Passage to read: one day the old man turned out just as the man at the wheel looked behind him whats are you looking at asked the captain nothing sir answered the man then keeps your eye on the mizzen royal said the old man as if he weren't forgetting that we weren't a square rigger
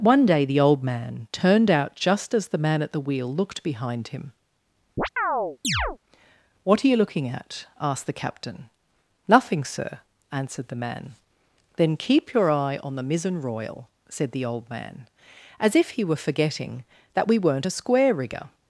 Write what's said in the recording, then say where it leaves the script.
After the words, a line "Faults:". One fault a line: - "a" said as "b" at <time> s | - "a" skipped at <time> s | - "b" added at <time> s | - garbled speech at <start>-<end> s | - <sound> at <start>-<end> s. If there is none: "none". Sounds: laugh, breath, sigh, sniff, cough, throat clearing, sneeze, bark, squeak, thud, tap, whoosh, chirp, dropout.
one day the old man turned out just as the man at the wheel looked behind him what are you looking at asked the captain nothing sir answered the man then keep your eye on the mizzen royal said the old man as if he were forgetting that we weren't a square rigger
Faults:
- chirp at 5.0-6.0 s
- "whats" said as "what" at 6.6 s
- "keeps" said as "keep" at 12.0 s
- "weren't" said as "were" at 16.0 s